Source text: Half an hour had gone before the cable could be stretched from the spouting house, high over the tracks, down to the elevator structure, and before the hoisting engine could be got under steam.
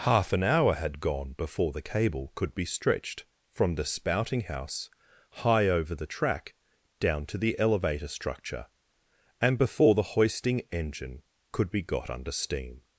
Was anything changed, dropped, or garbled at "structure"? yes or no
no